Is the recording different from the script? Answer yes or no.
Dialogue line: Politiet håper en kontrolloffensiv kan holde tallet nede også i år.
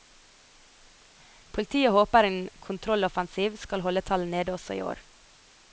yes